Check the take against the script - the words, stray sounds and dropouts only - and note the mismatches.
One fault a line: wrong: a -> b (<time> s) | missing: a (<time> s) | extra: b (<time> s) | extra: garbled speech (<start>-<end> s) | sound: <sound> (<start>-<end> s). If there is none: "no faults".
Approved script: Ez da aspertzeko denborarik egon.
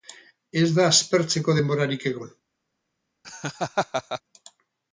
sound: laugh (3.2-4.2 s)